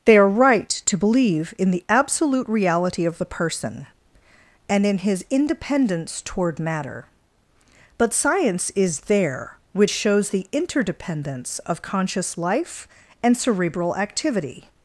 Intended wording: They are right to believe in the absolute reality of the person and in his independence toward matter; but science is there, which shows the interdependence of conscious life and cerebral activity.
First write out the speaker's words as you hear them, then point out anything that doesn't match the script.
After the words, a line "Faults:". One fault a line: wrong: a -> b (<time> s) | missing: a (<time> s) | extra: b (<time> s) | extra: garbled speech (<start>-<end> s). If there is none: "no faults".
They are right to believe in the absolute reality of the person and in his independence toward matter; but science is there, which shows the interdependence of conscious life and cerebral activity.
Faults:
no faults